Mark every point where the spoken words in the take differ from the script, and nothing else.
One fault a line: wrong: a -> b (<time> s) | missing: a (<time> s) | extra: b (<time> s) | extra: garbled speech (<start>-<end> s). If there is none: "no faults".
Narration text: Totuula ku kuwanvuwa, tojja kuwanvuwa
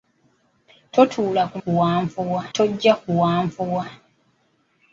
no faults